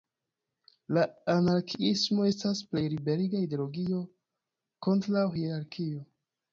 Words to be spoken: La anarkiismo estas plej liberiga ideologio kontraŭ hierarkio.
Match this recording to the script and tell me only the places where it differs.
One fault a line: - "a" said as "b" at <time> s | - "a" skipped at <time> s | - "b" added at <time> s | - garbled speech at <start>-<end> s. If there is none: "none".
none